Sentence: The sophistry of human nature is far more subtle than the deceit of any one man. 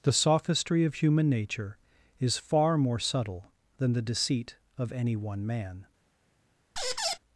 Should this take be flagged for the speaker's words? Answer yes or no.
no